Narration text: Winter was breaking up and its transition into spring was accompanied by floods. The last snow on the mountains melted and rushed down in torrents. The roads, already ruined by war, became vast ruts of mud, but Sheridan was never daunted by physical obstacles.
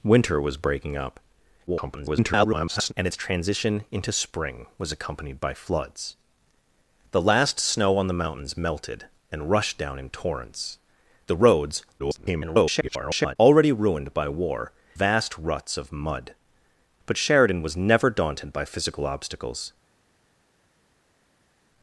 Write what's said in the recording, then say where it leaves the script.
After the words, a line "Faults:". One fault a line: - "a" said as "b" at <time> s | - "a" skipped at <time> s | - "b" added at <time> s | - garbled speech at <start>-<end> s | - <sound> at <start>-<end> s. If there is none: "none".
Winter was breaking up [garbled] and its transition into spring was accompanied by floods. The last snow on the mountains melted and rushed down in torrents. The roads, [garbled] already ruined by war, vast ruts of mud, but Sheridan was never daunted by physical obstacles.
Faults:
- garbled speech at 1.7-2.9 s
- garbled speech at 12.0-13.4 s
- "became" skipped at 14.7 s